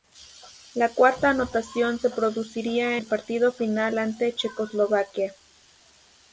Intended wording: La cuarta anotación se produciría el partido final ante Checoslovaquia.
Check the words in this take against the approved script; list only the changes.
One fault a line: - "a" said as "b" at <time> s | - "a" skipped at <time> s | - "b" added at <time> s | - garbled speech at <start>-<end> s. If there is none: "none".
none